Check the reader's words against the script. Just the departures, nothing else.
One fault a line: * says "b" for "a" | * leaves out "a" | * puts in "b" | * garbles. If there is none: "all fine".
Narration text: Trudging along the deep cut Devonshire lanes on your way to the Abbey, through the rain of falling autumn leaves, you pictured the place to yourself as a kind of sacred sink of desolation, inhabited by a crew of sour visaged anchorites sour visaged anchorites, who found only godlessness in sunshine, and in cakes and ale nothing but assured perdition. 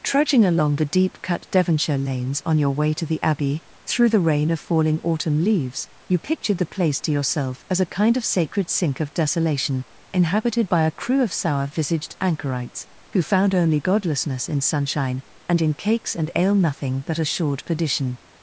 * leaves out "sour visaged anchorites"